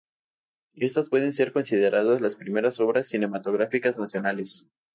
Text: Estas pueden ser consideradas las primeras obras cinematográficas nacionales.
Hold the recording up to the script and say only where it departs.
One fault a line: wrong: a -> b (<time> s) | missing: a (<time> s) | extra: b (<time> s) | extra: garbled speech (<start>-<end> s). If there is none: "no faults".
no faults